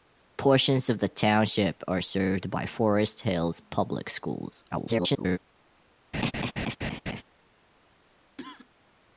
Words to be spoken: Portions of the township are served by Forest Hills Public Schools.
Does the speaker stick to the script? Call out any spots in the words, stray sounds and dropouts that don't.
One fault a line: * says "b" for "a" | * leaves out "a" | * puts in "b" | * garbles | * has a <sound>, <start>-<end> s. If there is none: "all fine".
* garbles
* has a laugh, 6.1-7.2 s
* has a cough, 8.4-8.7 s